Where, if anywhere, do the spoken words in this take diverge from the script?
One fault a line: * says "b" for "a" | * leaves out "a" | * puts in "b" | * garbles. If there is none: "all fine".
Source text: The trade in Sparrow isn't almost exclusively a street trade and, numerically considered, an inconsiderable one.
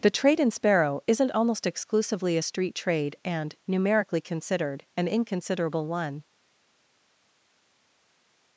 all fine